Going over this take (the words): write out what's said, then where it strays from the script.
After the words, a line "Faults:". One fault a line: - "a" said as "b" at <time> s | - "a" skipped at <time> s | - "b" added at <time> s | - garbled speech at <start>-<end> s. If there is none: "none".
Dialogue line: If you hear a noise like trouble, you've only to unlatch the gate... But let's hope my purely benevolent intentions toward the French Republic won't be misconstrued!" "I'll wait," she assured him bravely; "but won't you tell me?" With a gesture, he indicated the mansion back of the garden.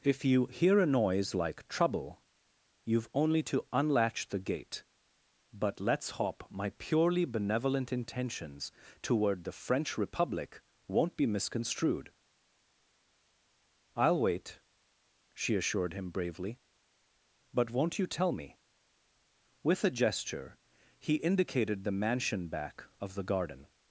If you hear a noise like trouble, you've only to unlatch the gate... But let's hope my purely benevolent intentions toward the French Republic won't be misconstrued!" "I'll wait," she assured him bravely; "but won't you tell me?" With a gesture, he indicated the mansion back of the garden.
Faults:
none